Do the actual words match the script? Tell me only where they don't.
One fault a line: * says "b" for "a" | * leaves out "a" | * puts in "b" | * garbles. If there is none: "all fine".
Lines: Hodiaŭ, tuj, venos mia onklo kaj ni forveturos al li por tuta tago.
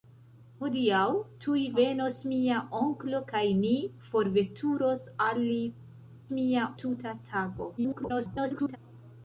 * says "mia" for "por"
* garbles